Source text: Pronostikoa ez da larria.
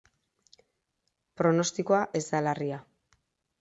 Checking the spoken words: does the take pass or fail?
pass